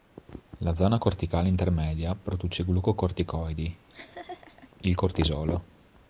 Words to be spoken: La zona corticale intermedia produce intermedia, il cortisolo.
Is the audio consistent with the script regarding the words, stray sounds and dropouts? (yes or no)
no